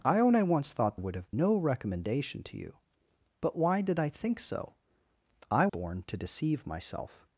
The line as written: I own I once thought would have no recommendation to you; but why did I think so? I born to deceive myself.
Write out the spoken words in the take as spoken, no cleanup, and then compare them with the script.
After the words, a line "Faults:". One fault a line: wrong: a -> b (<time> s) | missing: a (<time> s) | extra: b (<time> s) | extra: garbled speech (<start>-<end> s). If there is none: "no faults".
I own I once thought would have no recommendation to you; but why did I think so? I born to deceive myself.
Faults:
no faults